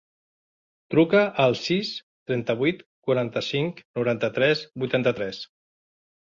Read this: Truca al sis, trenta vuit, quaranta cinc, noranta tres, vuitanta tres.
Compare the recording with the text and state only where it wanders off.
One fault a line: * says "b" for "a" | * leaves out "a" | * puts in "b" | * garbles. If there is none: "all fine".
all fine